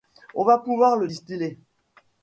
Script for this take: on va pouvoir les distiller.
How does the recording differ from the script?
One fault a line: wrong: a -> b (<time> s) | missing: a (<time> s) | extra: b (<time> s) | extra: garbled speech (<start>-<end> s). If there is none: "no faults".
wrong: les -> le (1.0 s)